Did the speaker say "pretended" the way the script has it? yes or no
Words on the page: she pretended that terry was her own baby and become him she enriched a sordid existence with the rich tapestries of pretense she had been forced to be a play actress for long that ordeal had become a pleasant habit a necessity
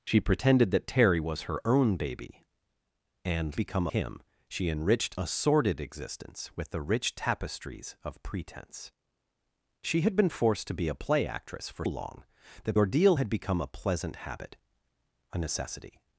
yes